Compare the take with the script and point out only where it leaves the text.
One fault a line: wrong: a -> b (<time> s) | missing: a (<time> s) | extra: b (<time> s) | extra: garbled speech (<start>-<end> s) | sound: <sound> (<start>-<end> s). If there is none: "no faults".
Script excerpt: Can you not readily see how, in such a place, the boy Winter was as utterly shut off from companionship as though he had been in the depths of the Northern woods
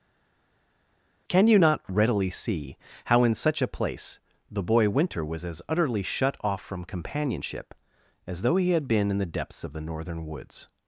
no faults